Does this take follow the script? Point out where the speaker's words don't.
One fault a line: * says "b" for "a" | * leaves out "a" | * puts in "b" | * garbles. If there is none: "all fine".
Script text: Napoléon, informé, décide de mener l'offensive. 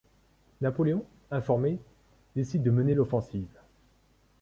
all fine